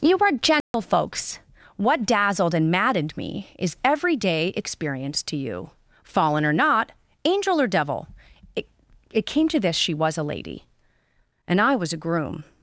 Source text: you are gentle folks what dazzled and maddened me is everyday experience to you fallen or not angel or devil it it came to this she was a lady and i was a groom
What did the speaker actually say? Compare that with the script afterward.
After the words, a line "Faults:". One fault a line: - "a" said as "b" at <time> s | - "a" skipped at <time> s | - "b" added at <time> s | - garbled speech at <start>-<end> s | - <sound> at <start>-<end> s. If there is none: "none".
you are gentle folks what dazzled and maddened me is everyday experience to you fallen or not angel or devil it it came to this she was a lady and i was a groom
Faults:
- dropout at 0.6-0.7 s